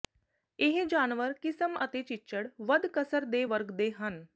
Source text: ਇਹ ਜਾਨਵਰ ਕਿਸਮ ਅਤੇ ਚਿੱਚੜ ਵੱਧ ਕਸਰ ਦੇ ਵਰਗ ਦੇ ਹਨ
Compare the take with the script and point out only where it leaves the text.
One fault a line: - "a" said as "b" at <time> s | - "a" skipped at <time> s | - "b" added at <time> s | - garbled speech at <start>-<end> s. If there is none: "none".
none